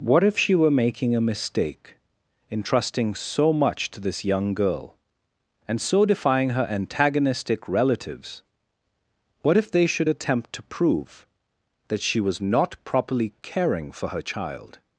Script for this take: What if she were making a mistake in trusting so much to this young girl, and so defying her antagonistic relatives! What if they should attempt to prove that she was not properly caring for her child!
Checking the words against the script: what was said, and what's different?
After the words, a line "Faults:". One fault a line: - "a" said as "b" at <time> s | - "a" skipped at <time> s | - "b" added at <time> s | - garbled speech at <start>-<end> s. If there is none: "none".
What if she were making a mistake in trusting so much to this young girl, and so defying her antagonistic relatives! What if they should attempt to prove that she was not properly caring for her child!
Faults:
none